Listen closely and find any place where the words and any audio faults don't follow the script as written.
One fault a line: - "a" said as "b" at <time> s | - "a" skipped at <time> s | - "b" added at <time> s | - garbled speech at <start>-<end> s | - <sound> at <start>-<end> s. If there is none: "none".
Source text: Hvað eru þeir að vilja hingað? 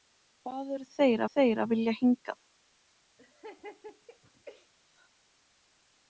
- "þeir" added at 1.3 s
- laugh at 3.2-4.7 s